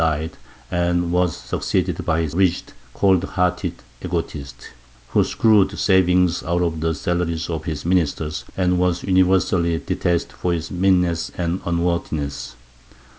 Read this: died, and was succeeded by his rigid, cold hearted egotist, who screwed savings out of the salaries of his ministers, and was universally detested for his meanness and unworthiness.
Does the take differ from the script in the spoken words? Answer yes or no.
no